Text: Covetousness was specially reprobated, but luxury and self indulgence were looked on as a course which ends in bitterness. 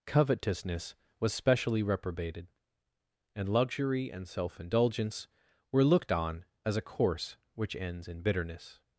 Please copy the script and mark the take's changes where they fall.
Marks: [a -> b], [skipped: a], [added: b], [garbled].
Covetousness was specially reprobated, [but -> and] luxury and self indulgence were looked on as a course which ends in bitterness.